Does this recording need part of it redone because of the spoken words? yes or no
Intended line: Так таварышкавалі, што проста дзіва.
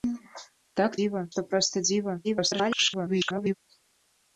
yes